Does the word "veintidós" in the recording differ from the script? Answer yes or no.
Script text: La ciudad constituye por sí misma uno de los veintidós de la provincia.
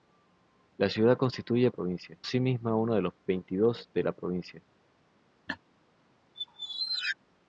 no